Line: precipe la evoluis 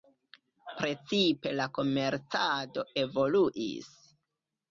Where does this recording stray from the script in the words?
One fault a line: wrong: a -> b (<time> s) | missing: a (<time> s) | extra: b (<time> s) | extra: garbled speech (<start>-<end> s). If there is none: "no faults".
extra: komercado (1.8 s)